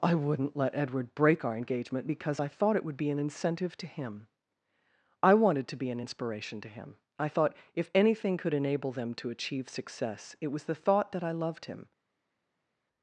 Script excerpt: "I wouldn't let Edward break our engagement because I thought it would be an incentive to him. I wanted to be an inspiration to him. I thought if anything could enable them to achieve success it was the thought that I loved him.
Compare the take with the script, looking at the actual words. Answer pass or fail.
pass